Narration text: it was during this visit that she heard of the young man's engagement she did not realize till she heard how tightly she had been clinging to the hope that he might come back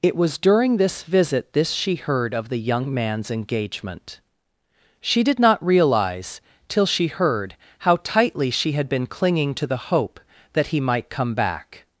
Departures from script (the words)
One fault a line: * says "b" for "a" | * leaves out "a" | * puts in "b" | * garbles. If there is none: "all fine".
* says "this" for "that"